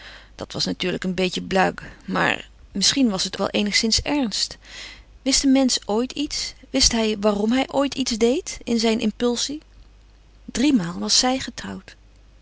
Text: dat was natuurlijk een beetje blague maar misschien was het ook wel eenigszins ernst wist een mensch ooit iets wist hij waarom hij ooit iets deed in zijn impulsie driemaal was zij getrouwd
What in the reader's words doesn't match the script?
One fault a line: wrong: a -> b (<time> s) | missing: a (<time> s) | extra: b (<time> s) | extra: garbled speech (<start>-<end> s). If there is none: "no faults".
missing: ook (3.4 s)